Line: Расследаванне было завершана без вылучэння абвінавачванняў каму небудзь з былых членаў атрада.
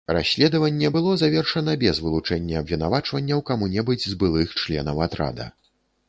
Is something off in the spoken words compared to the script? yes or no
no